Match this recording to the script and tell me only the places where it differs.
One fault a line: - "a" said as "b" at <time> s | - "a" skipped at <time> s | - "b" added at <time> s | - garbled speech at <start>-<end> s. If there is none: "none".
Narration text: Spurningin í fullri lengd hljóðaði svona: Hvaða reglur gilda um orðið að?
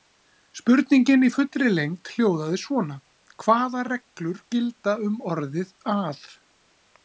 none